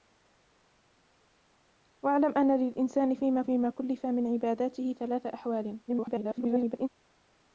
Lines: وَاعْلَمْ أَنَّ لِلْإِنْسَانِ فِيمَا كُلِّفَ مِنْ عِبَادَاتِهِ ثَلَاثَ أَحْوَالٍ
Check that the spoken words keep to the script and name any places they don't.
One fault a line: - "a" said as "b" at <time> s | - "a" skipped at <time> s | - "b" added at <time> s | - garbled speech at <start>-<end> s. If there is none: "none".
- "فِيمَا" added at 3.4 s
- garbled speech at 5.9-6.9 s